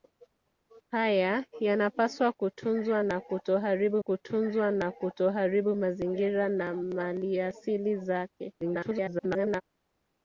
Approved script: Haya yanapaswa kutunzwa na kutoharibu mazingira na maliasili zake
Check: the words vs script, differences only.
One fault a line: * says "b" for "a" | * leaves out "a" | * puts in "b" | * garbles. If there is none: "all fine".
* puts in "kutunzwa na kutoharibu"
* garbles